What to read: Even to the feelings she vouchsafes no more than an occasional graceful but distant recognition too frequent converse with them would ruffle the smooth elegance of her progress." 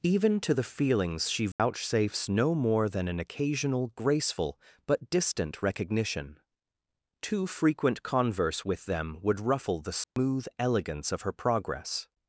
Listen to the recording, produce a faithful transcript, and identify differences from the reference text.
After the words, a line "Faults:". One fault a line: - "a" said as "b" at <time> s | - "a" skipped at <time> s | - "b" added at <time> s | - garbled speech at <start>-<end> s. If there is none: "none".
Even to the feelings she vouchsafes no more than an occasional graceful but distant recognition too frequent converse with them would ruffle the smooth elegance of her progress."
Faults:
none